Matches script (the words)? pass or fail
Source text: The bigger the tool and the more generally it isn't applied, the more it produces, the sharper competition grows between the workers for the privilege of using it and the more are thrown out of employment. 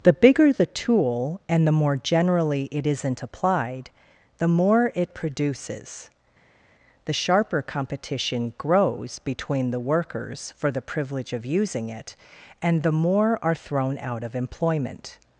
pass